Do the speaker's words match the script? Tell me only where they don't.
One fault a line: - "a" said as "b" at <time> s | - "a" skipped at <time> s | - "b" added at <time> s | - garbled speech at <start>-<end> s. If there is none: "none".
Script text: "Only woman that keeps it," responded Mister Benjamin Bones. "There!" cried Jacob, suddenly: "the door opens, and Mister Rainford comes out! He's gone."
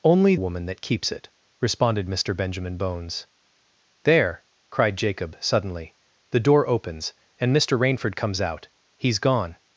none